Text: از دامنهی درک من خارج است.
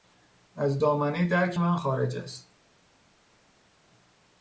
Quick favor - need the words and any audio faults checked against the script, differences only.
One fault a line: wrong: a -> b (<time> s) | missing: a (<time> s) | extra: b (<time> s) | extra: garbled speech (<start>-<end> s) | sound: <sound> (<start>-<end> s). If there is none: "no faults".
no faults